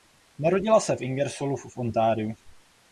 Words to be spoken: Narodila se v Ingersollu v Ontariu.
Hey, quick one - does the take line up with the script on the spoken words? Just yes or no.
yes